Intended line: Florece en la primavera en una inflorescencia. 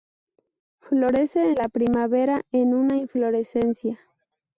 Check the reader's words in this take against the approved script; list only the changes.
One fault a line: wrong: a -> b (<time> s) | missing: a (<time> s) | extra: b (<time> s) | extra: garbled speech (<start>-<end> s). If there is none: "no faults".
no faults